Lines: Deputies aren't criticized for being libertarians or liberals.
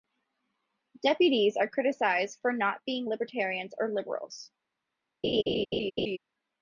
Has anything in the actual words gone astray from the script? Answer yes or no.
yes